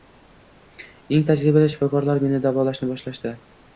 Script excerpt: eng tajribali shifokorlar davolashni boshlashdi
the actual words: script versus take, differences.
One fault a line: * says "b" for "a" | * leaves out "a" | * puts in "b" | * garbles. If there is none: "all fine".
* puts in "meni"